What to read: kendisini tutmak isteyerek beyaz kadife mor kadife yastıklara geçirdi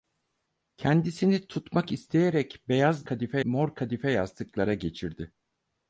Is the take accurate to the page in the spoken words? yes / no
yes